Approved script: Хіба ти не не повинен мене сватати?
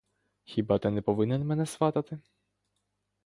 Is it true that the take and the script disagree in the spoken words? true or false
true